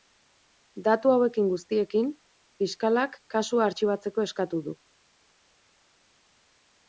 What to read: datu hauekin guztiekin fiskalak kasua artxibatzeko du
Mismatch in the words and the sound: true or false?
true